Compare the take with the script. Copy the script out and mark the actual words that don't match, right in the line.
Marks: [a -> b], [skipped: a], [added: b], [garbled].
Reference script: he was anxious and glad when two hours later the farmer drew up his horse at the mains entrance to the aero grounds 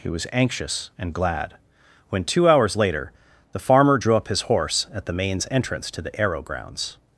he was anxious and glad when two hours later the farmer drew up his horse at the mains entrance to the aero grounds